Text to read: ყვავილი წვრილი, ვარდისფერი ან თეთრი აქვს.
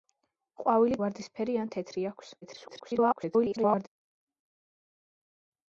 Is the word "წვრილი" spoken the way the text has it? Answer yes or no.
no